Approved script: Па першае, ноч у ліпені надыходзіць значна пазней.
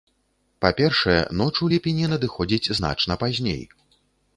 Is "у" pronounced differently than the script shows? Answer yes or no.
no